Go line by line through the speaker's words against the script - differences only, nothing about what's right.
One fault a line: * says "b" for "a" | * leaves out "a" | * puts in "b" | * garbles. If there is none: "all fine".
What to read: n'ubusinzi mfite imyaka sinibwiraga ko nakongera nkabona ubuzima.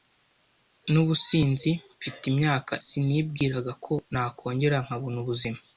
all fine